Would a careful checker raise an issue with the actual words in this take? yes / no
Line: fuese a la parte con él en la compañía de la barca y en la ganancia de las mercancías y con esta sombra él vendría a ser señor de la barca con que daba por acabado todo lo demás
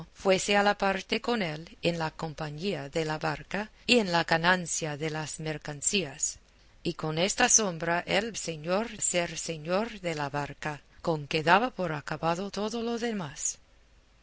yes